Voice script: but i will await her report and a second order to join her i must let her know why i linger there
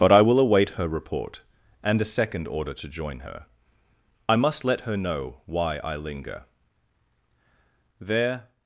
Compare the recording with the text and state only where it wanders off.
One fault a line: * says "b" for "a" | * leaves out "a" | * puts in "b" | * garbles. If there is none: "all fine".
all fine